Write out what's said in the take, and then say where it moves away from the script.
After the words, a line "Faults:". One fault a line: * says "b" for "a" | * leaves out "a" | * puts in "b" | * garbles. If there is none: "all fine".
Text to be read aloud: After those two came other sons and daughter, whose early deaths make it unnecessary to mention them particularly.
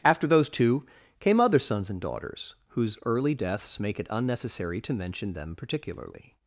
After those two came other sons and daughters, whose early deaths make it unnecessary to mention them particularly.
Faults:
* says "daughters" for "daughter"